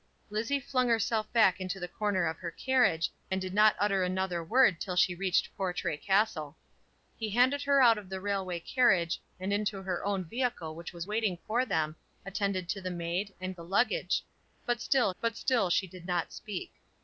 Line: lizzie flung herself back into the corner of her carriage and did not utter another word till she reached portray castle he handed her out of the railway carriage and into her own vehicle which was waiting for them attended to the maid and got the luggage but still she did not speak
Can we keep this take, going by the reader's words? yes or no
no